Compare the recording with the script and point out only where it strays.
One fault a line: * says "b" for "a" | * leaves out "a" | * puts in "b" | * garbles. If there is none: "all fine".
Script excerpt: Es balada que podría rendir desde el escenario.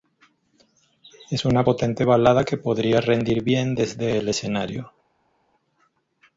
* puts in "una potente"
* puts in "bien"